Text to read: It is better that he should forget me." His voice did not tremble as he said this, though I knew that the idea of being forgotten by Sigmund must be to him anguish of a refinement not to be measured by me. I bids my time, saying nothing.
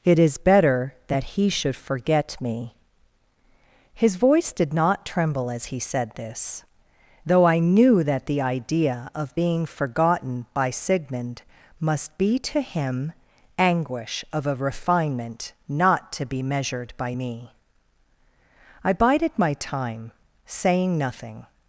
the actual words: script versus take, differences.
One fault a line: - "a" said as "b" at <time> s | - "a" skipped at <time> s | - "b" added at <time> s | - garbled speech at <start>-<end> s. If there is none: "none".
- "bids" said as "bided" at 18.9 s